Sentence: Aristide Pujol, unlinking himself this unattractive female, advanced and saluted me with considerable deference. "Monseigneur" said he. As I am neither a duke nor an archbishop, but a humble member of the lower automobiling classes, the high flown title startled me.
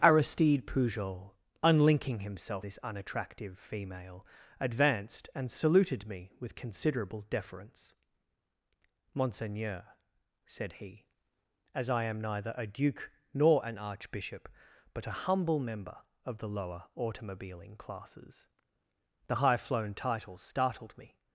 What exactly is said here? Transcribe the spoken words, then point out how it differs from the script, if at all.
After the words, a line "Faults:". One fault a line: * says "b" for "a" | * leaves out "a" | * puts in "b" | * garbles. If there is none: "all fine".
Aristide Pujol, unlinking himself this unattractive female, advanced and saluted me with considerable deference. "Monseigneur" said he. As I am neither a duke nor an archbishop, but a humble member of the lower automobiling classes, the high flown title startled me.
Faults:
all fine